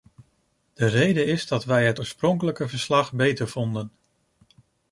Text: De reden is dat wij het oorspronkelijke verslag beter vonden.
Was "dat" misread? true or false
false